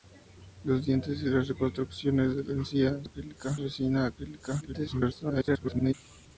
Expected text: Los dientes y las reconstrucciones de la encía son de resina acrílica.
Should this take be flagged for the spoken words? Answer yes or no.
yes